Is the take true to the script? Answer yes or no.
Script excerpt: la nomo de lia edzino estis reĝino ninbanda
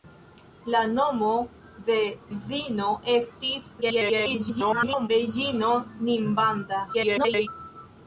no